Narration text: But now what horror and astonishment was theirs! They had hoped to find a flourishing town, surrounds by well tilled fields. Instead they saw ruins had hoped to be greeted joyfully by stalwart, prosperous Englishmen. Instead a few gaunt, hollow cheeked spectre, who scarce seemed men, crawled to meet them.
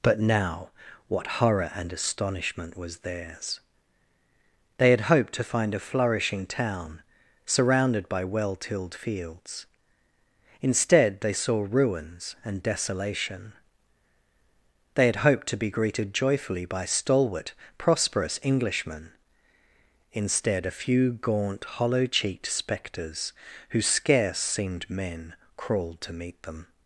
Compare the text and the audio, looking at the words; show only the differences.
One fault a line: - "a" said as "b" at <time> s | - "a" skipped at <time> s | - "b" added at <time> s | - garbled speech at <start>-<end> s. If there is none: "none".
- "surrounds" said as "surrounded" at 7.5 s
- "and desolation They" added at 12.4 s
- "spectre" said as "spectres" at 22.5 s